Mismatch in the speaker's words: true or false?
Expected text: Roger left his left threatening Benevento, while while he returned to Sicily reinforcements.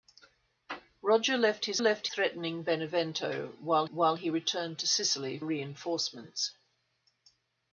false